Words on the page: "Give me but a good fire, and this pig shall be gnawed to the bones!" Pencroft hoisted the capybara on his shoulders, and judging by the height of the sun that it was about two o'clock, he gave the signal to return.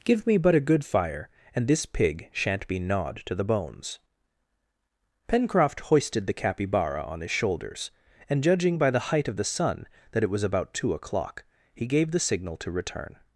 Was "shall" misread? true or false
true